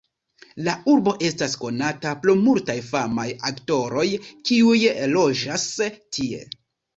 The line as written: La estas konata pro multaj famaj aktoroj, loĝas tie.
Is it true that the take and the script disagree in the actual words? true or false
true